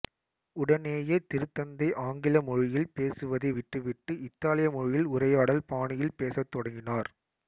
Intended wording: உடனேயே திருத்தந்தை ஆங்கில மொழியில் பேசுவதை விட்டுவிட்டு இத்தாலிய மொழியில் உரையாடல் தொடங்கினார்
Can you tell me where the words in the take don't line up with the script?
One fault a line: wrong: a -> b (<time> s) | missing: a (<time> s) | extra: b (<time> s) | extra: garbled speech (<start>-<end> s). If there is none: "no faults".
extra: பாணியில் பேசத் (5.6 s)